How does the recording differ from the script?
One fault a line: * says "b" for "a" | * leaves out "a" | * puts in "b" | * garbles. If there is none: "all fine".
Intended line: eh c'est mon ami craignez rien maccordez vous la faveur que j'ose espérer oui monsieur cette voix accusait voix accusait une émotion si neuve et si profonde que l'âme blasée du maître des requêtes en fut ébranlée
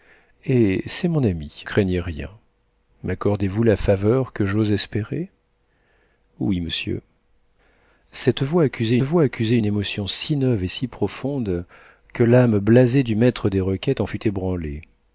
all fine